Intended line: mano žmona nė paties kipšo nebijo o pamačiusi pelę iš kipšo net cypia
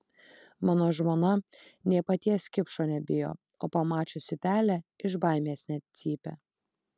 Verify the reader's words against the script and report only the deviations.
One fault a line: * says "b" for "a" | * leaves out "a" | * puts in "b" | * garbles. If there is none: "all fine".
* says "baimės" for "kipšo"